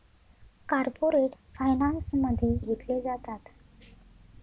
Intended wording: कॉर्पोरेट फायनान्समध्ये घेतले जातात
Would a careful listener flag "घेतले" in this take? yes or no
no